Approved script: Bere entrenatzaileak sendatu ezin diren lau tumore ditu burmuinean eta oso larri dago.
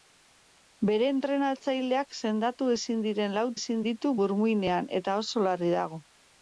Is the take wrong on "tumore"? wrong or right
wrong